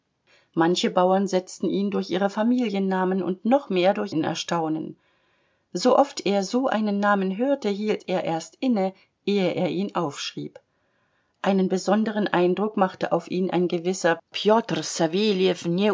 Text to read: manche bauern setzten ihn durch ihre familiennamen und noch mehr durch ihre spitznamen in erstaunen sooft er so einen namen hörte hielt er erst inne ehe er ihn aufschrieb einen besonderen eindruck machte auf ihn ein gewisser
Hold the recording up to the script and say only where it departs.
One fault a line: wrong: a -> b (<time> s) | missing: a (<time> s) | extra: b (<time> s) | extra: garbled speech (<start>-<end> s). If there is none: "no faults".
missing: ihre spitznamen (4.1 s)